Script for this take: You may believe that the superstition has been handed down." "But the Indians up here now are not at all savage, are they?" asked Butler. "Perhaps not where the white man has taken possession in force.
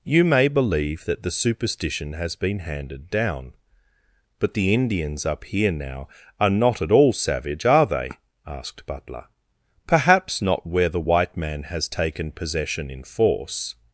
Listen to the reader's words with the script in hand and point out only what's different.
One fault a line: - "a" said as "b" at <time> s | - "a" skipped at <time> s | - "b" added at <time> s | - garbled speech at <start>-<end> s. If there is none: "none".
none